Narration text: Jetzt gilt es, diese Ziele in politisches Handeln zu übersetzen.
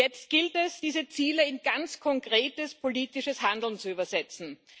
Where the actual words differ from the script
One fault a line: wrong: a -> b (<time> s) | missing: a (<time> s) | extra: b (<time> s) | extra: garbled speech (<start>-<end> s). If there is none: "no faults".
extra: ganz konkretes (1.6 s)